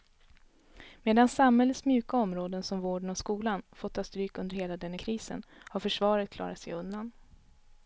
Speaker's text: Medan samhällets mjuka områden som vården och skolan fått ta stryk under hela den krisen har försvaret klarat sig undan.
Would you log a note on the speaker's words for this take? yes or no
no